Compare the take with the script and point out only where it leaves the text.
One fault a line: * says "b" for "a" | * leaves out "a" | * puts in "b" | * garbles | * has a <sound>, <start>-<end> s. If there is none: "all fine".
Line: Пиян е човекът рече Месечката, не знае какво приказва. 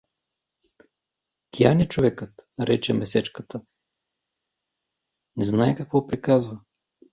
all fine